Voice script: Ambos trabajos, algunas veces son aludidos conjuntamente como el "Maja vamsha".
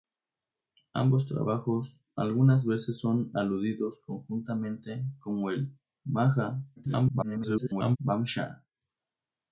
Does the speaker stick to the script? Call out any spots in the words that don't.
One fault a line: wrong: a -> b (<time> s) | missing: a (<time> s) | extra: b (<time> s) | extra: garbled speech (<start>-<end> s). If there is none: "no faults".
extra: garbled speech (6.8-8.0 s)